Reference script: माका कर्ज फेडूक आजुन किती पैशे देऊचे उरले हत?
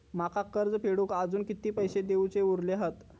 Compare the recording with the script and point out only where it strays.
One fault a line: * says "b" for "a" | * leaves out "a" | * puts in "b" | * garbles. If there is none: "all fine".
all fine